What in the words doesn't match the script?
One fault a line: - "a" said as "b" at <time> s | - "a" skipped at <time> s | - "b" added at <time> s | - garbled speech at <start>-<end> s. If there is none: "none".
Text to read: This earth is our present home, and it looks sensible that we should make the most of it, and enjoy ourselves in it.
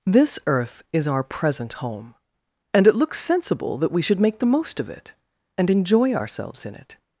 none